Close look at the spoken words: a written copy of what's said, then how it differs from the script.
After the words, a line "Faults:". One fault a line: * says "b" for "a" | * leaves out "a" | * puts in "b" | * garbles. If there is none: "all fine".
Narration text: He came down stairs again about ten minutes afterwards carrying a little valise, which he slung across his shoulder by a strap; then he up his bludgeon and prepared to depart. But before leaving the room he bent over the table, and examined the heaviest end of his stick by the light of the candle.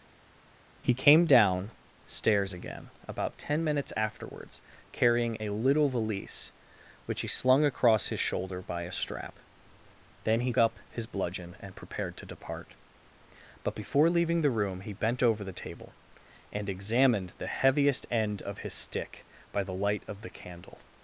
He came down stairs again about ten minutes afterwards carrying a little valise, which he slung across his shoulder by a strap; then he up his bludgeon and prepared to depart. But before leaving the room he bent over the table, and examined the heaviest end of his stick by the light of the candle.
Faults:
all fine